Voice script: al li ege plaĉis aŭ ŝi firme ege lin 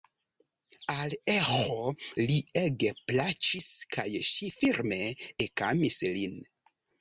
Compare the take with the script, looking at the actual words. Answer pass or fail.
fail